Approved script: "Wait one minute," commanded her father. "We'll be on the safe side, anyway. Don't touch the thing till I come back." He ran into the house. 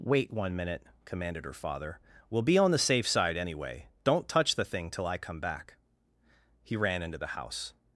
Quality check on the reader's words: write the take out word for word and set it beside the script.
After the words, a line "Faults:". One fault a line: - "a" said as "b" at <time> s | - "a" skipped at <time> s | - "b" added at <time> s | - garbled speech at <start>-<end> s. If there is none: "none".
"Wait one minute," commanded her father. "We'll be on the safe side, anyway. Don't touch the thing till I come back." He ran into the house.
Faults:
none